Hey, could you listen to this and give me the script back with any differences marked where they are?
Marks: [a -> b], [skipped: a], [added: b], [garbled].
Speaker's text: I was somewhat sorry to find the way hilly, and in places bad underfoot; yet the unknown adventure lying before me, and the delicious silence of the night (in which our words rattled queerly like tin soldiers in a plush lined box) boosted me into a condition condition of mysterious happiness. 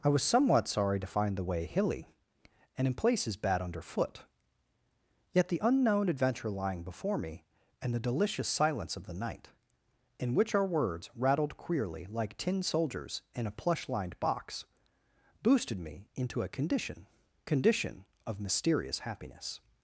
I was somewhat sorry to find the way hilly, and in places bad underfoot; yet the unknown adventure lying before me, and the delicious silence of the night (in which our words rattled queerly like tin soldiers in a plush lined box) boosted me into a condition condition of mysterious happiness.